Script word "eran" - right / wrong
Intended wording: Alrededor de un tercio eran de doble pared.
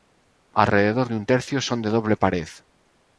wrong